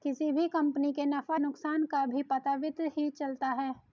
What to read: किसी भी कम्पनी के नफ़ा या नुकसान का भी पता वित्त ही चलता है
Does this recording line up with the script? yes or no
no